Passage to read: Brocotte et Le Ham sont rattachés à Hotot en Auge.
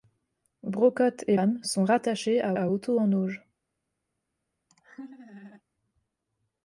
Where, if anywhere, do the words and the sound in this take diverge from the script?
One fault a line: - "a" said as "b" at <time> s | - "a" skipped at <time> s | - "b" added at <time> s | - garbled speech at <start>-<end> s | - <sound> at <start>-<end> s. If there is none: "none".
- "Le" skipped at 1.4 s
- "à" added at 2.5 s
- laugh at 4.7-5.6 s